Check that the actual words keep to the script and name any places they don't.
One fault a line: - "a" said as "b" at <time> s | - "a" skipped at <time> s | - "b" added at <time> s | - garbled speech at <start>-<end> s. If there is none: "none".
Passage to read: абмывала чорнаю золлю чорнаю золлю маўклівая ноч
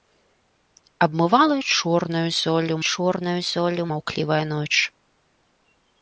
none